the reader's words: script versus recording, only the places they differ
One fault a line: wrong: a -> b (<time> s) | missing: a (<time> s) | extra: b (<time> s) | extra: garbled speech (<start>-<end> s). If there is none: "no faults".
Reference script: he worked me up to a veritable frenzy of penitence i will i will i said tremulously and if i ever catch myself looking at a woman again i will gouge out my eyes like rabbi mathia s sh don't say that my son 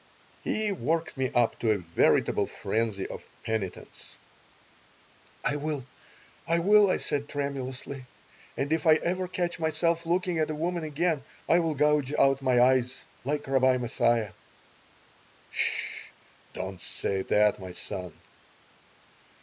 no faults